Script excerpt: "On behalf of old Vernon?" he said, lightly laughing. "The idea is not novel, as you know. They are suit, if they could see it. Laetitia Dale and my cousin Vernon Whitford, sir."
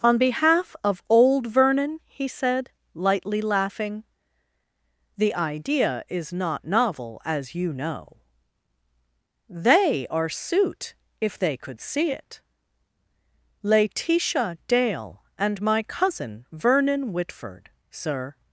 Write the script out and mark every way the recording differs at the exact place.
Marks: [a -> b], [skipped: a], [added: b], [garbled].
"On behalf of old Vernon?" he said, lightly laughing. "The idea is not novel, as you know. They are suit, if they could see it. Laetitia Dale and my cousin Vernon Whitford, sir."